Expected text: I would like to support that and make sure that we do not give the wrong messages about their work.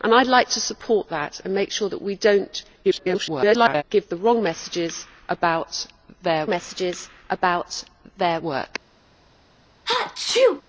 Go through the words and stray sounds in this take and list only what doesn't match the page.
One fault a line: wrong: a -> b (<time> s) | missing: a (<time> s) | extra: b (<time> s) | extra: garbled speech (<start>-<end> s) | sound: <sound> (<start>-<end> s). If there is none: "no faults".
extra: garbled speech (2.8-3.8 s)
extra: messages about their (6.5 s)
sound: sneeze (9.9-10.6 s)